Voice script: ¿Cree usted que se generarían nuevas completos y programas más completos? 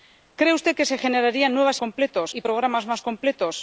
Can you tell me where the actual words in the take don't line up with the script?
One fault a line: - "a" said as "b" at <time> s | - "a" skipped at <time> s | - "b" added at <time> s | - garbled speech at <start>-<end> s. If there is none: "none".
none